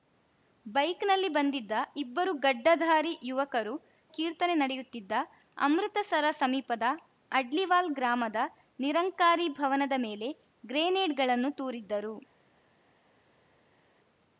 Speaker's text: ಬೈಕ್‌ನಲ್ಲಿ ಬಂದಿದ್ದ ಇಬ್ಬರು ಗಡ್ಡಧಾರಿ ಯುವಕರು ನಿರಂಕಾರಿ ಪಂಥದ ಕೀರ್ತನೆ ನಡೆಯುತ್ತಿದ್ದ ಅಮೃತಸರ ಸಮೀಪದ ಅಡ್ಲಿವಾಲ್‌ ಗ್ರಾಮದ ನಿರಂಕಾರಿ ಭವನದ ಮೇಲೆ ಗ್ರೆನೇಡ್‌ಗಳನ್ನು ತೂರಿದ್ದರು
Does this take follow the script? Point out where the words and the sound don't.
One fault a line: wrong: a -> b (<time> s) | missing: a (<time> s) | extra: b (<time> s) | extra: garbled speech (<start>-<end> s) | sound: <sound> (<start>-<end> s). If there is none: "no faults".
missing: ನಿರಂಕಾರಿ ಪಂಥದ (3.7 s)